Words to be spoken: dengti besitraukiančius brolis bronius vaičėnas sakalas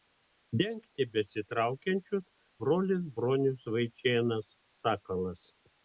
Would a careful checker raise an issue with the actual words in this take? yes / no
no